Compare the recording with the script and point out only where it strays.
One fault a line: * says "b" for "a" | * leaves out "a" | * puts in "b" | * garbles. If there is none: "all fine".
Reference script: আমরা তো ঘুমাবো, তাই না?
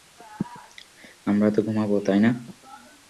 all fine